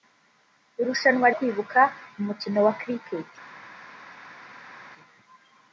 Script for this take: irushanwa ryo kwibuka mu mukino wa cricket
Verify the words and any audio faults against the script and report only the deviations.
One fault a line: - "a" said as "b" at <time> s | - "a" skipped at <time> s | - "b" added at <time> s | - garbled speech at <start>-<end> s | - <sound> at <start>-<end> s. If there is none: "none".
- "ryo" skipped at 1.3 s